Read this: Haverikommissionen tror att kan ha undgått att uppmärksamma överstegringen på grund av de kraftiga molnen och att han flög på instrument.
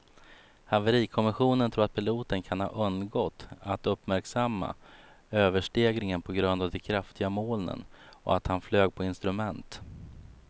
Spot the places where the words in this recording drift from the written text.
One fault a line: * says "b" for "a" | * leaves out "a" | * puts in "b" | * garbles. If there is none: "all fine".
* puts in "piloten"